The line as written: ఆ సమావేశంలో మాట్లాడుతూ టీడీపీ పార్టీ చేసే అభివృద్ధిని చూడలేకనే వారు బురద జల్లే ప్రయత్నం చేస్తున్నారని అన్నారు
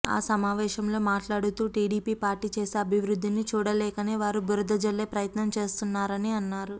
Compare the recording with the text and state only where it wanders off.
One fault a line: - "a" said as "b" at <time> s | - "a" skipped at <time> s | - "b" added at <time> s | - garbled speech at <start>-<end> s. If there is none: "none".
none